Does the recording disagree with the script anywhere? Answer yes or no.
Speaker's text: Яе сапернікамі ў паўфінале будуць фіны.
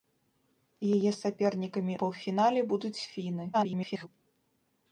yes